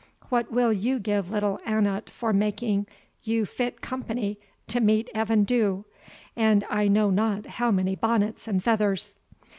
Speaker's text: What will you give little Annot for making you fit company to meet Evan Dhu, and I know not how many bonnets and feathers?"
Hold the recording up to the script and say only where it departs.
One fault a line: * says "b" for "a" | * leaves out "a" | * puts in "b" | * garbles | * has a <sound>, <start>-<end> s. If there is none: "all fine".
all fine